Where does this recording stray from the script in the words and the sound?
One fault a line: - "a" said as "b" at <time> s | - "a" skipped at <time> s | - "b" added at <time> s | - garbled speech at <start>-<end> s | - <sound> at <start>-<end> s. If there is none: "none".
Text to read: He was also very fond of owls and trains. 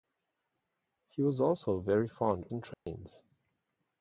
- "of owls" skipped at 2.5 s
- dropout at 2.7-2.9 s